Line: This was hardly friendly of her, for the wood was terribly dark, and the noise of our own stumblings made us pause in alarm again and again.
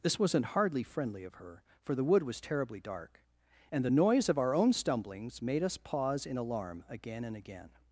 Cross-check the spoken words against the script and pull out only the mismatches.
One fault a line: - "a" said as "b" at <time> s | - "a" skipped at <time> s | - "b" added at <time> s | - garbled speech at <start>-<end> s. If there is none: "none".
- "was" said as "wasn't" at 0.2 s